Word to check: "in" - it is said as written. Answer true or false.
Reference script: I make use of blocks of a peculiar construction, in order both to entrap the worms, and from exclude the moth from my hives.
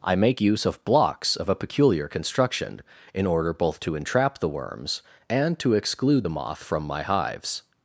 true